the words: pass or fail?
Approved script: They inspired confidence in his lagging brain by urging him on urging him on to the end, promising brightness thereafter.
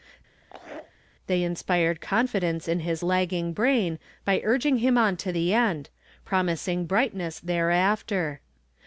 fail